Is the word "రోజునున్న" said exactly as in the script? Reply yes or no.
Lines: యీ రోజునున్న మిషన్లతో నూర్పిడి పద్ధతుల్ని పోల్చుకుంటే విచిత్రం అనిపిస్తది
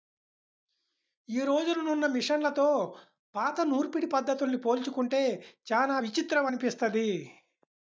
yes